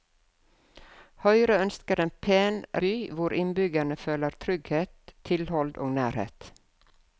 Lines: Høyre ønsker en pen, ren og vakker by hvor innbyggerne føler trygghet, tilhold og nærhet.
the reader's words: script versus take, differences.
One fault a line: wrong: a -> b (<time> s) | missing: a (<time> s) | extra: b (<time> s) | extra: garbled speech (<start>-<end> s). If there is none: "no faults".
missing: ren og vakker (2.6 s)